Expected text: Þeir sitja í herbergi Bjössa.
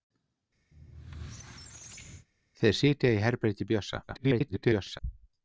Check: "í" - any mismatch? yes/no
no